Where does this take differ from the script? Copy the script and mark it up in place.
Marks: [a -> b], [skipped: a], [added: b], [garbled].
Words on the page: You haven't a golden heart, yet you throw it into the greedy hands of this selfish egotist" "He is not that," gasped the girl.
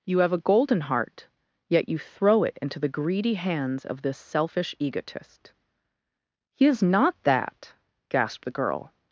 You [haven't -> have] a golden heart, yet you throw it into the greedy hands of this selfish egotist" "He is not that," gasped the girl.